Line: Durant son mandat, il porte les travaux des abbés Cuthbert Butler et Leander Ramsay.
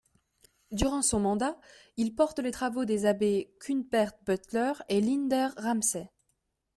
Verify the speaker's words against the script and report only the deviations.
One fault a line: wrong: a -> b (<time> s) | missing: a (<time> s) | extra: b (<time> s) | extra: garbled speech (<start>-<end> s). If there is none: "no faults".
no faults